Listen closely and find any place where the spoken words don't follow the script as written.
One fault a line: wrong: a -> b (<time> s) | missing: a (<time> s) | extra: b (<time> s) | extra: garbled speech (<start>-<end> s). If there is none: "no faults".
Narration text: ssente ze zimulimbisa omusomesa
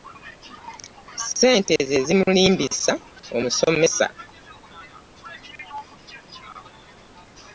no faults